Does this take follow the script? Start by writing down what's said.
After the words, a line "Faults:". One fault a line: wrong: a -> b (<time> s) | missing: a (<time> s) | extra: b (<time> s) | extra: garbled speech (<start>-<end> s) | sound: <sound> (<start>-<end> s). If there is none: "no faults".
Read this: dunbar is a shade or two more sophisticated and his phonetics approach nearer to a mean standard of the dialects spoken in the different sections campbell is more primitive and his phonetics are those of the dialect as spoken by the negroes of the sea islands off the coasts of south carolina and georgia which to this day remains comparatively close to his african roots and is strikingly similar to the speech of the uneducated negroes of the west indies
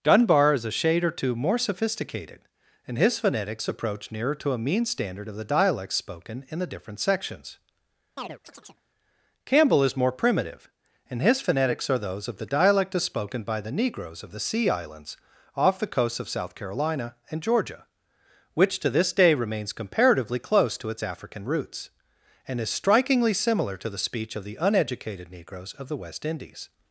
dunbar is a shade or two more sophisticated and his phonetics approach nearer to a mean standard of the dialects spoken in the different sections campbell is more primitive and his phonetics are those of the dialect as spoken by the negroes of the sea islands off the coasts of south carolina and georgia which to this day remains comparatively close to its african roots and is strikingly similar to the speech of the uneducated negroes of the west indies
Faults:
sound: chirp (8.2-8.8 s)
wrong: his -> its (20.9 s)